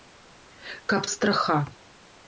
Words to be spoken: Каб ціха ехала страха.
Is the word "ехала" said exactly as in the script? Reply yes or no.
no